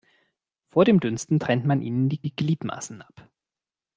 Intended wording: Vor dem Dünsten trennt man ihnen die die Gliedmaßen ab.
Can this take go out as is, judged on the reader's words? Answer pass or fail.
pass